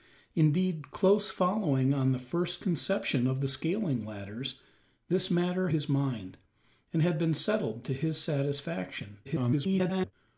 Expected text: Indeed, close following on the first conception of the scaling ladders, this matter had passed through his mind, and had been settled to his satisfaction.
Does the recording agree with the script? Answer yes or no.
no